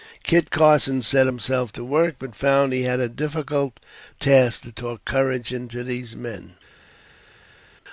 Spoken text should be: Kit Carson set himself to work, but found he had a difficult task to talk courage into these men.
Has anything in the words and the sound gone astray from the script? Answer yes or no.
no